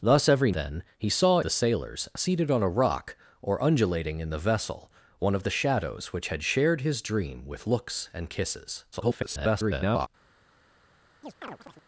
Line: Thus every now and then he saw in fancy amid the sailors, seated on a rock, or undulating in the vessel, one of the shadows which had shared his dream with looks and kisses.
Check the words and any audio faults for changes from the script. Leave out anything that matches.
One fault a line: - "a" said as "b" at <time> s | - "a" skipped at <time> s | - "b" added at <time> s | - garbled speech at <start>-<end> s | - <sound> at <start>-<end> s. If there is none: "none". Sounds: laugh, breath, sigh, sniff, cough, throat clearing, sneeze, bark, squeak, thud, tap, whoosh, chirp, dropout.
- "now and" skipped at 0.5 s
- "in fancy amid" skipped at 1.4 s
- garbled speech at 8.9-10.1 s
- chirp at 11.2-11.8 s